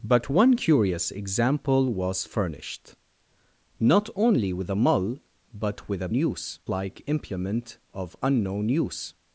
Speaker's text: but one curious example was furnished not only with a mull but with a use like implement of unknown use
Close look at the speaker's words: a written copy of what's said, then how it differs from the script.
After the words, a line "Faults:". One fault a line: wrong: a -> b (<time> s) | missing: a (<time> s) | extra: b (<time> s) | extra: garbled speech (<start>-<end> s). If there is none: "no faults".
but one curious example was furnished not only with a mull but with a use like implement of unknown use
Faults:
no faults